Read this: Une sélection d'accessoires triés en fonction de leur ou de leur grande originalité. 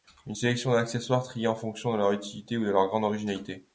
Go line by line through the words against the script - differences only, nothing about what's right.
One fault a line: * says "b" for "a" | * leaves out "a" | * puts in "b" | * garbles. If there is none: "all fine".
* puts in "utilité"